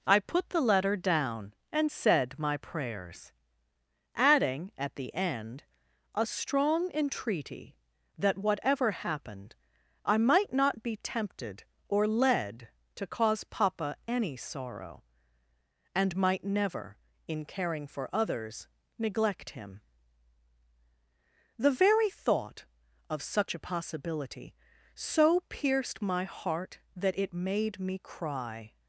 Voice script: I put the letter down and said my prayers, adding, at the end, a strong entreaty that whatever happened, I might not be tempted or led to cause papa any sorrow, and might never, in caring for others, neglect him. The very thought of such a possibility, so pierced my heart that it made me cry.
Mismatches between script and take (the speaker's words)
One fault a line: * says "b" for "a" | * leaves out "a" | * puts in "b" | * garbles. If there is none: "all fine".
all fine